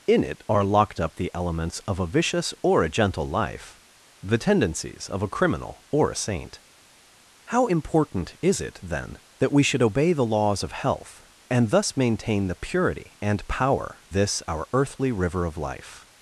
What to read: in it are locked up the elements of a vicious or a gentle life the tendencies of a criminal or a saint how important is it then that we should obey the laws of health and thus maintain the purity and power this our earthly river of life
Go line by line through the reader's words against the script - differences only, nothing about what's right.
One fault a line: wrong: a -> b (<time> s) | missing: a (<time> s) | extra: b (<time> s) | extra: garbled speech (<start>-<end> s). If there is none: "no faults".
no faults